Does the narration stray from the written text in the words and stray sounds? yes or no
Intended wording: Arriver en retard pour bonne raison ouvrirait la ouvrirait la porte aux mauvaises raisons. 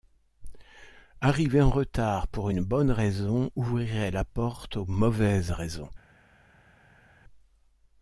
yes